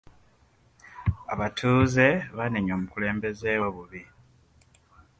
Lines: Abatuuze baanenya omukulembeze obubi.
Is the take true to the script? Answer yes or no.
yes